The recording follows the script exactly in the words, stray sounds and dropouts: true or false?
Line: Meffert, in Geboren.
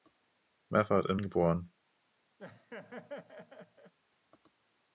false